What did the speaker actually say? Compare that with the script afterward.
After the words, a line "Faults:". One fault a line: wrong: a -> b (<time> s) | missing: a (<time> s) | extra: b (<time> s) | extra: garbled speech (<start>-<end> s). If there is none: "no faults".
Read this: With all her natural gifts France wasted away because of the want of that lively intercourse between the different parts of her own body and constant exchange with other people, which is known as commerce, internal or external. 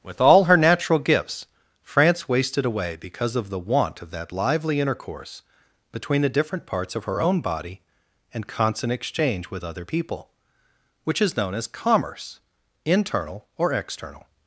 With all her natural gifts France wasted away because of the want of that lively intercourse between the different parts of her own body and constant exchange with other people, which is known as commerce, internal or external.
Faults:
no faults